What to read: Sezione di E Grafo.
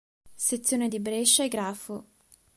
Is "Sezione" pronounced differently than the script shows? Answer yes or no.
no